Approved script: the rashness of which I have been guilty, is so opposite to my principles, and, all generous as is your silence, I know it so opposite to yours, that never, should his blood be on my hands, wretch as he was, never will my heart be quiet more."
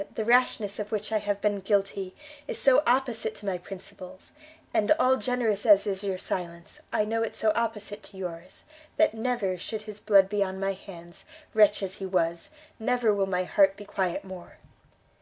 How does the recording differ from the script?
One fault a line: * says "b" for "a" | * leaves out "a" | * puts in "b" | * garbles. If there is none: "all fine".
all fine